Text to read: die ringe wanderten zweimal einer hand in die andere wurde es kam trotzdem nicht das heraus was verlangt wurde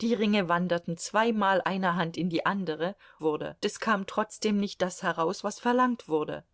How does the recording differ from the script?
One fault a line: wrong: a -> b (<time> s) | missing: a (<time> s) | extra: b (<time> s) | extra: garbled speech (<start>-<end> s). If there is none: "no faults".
no faults